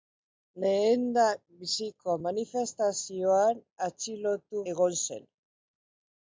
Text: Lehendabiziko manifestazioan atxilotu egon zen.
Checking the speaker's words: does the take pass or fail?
pass